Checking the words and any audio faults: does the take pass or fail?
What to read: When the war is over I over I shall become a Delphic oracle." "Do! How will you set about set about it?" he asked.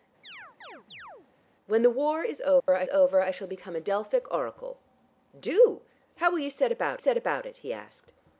fail